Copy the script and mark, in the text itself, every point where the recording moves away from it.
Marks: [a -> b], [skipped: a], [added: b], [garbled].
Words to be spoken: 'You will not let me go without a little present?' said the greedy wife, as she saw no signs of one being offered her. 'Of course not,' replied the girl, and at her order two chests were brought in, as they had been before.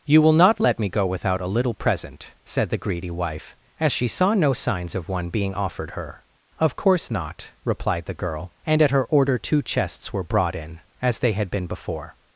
'You will not let me go without a little present?' said the greedy wife, as she saw no signs of one being offered her. 'Of course not,' replied the girl, and at her order two chests were brought in, as they had been before.